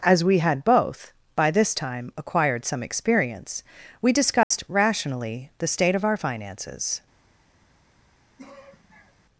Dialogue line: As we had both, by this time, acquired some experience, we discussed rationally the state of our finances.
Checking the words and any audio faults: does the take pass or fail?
fail